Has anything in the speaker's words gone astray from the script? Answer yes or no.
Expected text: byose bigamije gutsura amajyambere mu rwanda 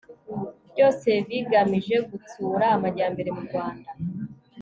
no